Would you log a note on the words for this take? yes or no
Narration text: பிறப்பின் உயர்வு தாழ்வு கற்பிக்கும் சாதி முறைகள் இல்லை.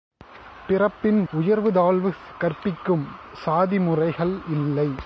no